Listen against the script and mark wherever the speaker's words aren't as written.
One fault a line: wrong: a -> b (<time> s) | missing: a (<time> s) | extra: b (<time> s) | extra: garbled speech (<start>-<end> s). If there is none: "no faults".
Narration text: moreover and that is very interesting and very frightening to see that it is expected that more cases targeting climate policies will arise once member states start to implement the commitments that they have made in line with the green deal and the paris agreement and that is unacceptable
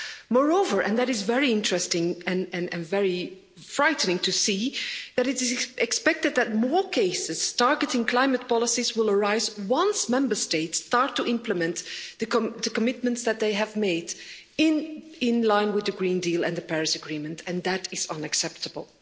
no faults